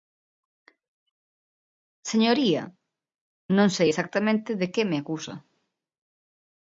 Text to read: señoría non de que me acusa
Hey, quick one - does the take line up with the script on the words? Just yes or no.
no